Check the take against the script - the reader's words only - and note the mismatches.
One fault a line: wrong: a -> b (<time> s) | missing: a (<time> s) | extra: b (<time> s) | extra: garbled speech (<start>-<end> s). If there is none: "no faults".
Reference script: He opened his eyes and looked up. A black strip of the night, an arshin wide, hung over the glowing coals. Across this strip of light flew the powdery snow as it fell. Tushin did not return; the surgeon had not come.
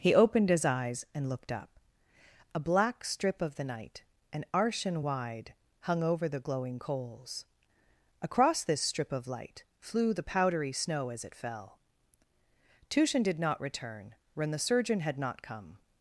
extra: when (14.3 s)